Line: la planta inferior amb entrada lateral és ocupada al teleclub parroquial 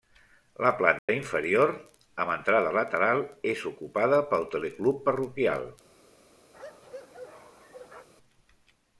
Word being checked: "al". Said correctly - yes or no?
no